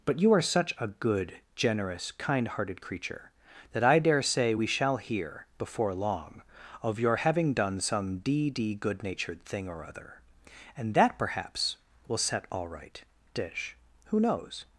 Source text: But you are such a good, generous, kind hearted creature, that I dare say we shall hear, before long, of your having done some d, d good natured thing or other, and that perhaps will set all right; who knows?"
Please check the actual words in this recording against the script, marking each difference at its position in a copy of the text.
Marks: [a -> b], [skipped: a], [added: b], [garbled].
But you are such a good, generous, kind hearted creature, that I dare say we shall hear, before long, of your having done some d, d good natured thing or other, and that perhaps will set all right; [added: dish] who knows?"